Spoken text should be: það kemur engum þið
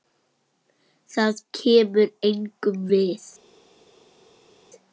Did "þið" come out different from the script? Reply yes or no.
yes